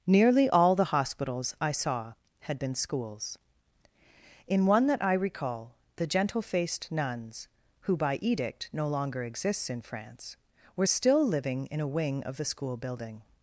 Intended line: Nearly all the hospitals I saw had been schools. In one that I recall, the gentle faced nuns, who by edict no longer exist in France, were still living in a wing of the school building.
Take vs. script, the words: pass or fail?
fail